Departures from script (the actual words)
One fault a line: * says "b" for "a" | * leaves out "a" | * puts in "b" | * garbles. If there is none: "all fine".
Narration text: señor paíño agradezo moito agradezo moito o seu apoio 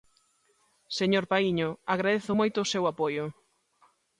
* leaves out "agradezo moito"